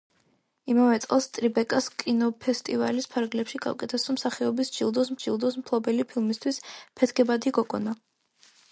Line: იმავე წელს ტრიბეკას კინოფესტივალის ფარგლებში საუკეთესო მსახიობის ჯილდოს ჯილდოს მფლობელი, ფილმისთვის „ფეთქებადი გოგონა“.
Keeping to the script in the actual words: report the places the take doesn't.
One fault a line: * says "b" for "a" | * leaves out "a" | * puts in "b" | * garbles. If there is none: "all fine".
all fine